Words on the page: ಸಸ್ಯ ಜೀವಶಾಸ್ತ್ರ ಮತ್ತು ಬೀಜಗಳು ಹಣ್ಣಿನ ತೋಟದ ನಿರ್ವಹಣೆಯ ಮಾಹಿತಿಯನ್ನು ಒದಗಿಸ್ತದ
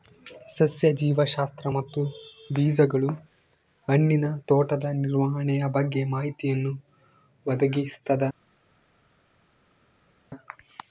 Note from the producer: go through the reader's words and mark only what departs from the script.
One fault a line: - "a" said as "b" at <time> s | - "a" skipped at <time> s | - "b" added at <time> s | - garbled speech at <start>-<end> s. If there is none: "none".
- "ಬಗ್ಗೆ" added at 5.7 s